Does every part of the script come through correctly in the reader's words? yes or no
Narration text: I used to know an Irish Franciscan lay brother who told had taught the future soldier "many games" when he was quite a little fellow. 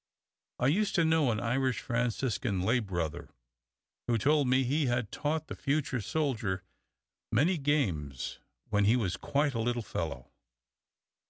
no